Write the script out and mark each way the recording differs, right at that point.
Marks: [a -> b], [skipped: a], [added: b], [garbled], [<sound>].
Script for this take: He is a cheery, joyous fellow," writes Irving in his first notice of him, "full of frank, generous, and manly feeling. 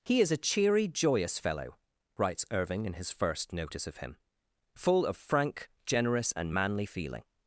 He is a cheery, joyous fellow," writes Irving in his first notice of him, "full of frank, generous, and manly feeling.